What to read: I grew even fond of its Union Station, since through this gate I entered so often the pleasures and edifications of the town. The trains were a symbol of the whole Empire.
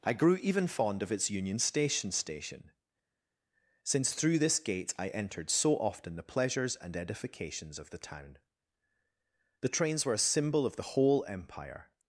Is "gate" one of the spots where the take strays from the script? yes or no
no